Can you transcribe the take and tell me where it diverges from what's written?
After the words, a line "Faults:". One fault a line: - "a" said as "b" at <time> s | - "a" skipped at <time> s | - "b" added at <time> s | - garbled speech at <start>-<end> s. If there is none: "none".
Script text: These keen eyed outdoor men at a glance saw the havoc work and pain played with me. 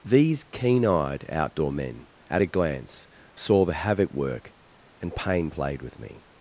These keen eyed outdoor men at a glance saw the havoc work and pain played with me.
Faults:
none